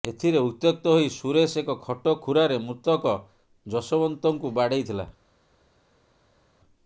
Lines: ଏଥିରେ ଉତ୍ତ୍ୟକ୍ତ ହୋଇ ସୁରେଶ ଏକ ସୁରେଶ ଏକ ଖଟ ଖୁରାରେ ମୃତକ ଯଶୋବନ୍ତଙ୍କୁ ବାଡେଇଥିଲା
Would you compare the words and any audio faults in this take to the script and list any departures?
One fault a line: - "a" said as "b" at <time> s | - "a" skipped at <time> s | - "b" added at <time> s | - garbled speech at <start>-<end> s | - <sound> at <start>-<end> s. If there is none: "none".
- "ସୁରେଶ ଏକ" skipped at 1.8 s